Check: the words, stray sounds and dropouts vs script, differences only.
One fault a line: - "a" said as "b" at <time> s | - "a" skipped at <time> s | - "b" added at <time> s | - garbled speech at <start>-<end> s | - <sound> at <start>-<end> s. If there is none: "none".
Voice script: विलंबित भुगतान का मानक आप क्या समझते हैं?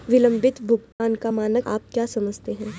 - dropout at 0.9-1.0 s